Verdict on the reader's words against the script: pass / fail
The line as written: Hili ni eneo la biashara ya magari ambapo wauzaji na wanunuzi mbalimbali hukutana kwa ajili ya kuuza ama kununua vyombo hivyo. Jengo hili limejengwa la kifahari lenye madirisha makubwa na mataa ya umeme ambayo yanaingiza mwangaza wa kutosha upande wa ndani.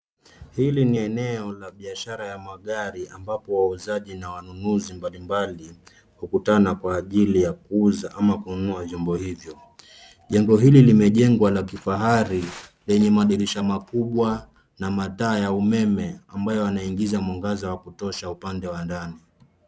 pass